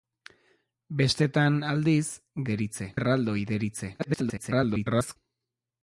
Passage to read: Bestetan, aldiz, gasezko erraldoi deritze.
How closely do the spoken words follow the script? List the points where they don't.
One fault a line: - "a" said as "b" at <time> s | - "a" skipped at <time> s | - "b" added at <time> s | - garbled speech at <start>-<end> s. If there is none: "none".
- "gasezko" said as "deritze" at 2.5 s
- garbled speech at 4.0-5.2 s